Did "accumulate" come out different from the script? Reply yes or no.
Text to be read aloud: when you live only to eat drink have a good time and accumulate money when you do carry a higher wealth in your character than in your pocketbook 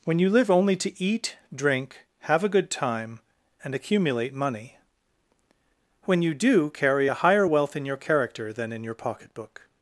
no